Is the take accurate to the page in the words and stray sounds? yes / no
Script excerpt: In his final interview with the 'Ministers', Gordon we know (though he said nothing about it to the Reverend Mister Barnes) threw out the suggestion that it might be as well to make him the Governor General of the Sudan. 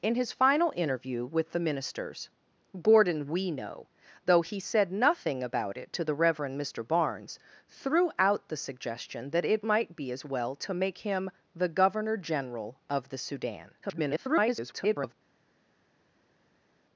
no